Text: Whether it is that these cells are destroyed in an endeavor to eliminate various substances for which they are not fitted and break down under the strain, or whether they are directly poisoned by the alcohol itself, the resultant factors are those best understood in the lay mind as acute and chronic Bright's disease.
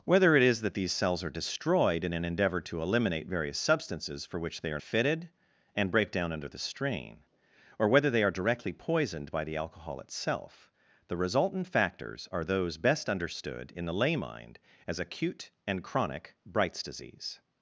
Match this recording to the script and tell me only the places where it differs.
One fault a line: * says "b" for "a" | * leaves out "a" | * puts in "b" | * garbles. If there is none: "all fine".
* leaves out "not"